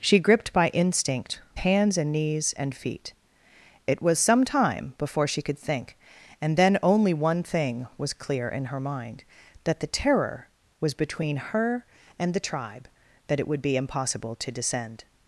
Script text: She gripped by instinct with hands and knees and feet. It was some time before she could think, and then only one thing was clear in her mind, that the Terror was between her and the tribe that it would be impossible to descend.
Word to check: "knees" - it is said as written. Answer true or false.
true